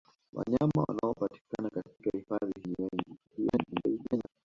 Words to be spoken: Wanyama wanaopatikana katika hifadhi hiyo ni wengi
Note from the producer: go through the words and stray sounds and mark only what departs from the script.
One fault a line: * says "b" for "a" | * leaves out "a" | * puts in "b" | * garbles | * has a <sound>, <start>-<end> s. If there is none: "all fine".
* leaves out "hiyo"
* garbles